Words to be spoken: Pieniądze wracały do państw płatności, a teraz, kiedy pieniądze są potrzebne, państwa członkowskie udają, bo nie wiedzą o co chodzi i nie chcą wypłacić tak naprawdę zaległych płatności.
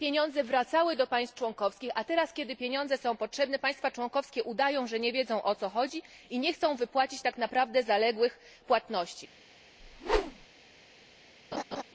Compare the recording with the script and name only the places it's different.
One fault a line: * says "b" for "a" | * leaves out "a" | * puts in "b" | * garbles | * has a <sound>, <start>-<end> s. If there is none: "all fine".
* says "członkowskich" for "płatności"
* says "że" for "bo"
* has a whoosh, 9.8-10.5 s
* has a laugh, 11.5-11.8 s